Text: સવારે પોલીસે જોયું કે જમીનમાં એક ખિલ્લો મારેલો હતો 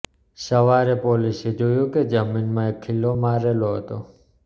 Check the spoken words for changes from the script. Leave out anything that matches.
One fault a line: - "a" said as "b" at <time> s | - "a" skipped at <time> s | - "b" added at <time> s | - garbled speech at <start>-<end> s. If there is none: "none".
none